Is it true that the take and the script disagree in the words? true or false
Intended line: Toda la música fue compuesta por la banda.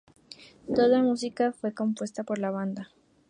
false